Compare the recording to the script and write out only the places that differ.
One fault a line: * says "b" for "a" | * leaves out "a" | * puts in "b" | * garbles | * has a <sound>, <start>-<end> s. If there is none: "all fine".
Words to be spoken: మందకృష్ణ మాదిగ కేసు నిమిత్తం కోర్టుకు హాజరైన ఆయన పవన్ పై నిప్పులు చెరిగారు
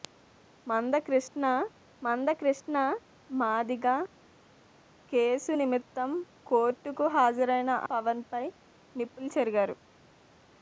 * puts in "మందకృష్ణ"
* leaves out "ఆయన"